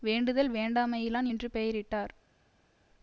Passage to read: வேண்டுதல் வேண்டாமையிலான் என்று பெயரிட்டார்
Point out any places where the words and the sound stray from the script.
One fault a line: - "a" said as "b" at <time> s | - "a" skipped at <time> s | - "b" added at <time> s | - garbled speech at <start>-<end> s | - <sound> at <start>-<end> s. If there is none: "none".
none